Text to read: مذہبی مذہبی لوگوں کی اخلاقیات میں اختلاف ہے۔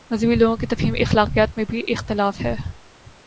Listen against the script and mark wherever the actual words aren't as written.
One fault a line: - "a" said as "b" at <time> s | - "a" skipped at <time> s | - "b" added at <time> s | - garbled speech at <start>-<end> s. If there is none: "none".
- "مذہبی" skipped at 0.3 s
- "تفہیم" added at 0.7 s
- "بھی" added at 1.7 s